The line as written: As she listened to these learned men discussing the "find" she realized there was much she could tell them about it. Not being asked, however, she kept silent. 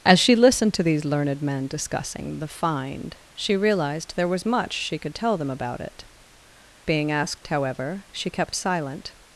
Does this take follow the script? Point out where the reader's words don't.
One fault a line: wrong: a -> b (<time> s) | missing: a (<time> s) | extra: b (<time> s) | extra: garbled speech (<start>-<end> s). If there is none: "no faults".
missing: Not (6.0 s)